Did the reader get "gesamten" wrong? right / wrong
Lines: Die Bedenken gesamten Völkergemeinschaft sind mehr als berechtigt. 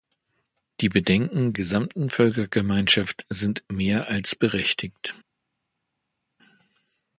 right